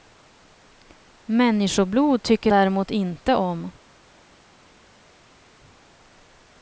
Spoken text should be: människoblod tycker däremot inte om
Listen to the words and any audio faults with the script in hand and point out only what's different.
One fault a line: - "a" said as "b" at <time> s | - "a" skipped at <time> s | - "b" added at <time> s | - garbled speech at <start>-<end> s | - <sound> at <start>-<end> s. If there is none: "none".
none